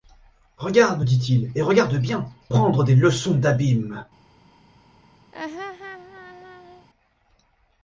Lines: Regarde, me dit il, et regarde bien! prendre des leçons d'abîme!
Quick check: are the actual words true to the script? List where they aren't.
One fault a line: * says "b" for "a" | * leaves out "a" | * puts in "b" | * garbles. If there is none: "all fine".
all fine